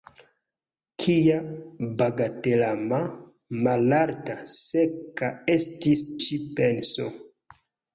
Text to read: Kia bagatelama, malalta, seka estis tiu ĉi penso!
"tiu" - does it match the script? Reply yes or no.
no